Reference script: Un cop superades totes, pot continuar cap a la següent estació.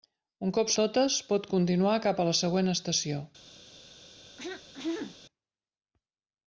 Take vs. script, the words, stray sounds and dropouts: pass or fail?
fail